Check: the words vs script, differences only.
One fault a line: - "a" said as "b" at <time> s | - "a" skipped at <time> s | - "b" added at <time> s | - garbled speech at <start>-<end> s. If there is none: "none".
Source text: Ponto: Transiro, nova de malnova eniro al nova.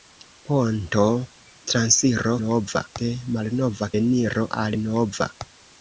none